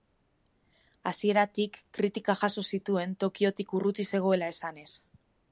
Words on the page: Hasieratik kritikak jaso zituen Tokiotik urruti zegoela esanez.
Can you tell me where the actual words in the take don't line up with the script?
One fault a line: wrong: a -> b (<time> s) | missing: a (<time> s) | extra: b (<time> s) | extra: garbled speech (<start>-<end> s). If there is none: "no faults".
no faults